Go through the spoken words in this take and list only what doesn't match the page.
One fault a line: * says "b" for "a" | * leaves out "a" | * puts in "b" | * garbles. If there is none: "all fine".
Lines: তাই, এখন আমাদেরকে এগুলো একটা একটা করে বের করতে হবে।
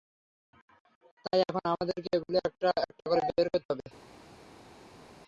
all fine